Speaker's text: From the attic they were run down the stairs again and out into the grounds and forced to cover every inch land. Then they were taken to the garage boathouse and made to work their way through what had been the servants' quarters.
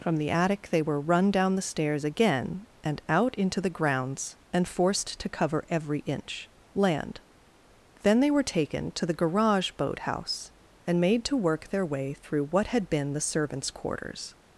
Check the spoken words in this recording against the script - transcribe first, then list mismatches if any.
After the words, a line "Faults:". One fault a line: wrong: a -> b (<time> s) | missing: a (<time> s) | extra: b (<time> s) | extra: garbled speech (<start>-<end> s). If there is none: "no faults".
From the attic they were run down the stairs again and out into the grounds and forced to cover every inch land. Then they were taken to the garage boathouse and made to work their way through what had been the servants' quarters.
Faults:
no faults